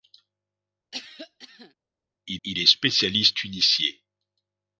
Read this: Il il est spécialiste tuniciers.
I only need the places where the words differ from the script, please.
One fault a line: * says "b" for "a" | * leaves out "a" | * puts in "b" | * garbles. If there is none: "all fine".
all fine